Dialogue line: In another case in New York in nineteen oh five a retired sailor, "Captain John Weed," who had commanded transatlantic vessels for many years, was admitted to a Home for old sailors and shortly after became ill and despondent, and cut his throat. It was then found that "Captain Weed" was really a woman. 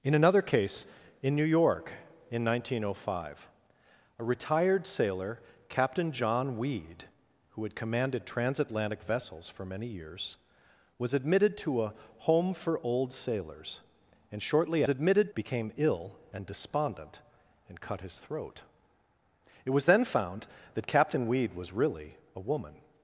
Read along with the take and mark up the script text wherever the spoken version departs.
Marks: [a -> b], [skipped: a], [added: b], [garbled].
In another case in New York in nineteen oh five a retired sailor, "Captain John Weed," who had commanded transatlantic vessels for many years, was admitted to a Home for old sailors and shortly [after -> admitted] became ill and despondent, and cut his throat. It was then found that "Captain Weed" was really a woman.